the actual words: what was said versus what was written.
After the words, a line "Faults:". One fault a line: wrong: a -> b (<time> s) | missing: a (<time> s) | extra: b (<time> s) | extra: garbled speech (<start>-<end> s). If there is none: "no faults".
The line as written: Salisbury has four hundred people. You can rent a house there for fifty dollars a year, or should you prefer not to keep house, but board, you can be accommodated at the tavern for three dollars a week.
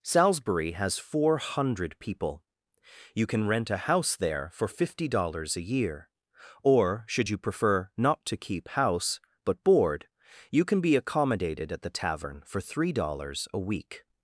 Salisbury has four hundred people. You can rent a house there for fifty dollars a year, or should you prefer not to keep house, but board, you can be accommodated at the tavern for three dollars a week.
Faults:
no faults